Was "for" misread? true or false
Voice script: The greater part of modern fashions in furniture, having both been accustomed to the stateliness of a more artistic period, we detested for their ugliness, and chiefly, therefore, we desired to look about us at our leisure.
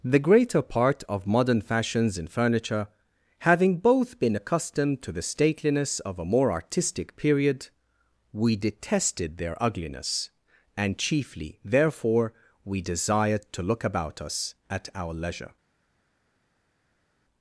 true